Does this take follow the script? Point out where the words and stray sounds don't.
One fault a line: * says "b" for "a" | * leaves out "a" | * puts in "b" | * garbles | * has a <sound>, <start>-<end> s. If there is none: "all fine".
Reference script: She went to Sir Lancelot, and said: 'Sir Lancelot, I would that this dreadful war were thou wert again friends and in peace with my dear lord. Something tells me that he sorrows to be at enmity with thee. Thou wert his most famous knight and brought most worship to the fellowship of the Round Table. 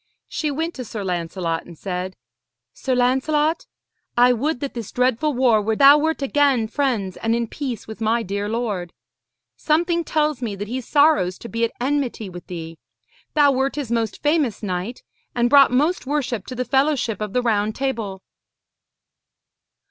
all fine